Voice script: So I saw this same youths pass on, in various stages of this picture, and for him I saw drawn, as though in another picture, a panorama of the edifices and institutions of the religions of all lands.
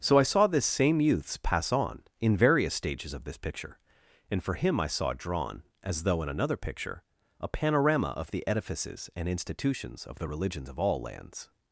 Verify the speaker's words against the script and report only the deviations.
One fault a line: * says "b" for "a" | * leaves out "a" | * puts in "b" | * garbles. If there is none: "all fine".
all fine